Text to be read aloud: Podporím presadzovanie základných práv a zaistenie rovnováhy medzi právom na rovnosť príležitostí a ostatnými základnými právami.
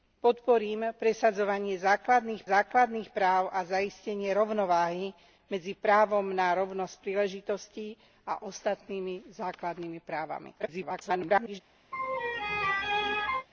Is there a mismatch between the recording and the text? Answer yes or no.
yes